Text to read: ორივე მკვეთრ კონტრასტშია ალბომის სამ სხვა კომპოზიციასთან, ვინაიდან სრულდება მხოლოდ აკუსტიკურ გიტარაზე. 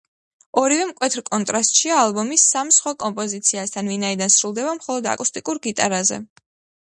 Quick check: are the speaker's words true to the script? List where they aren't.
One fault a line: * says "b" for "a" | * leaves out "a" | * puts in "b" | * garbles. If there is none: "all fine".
all fine